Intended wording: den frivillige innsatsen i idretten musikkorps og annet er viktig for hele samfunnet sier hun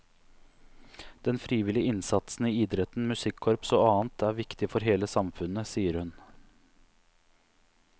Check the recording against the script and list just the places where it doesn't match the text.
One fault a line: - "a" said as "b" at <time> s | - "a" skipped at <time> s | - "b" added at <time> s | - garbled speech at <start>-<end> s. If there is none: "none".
none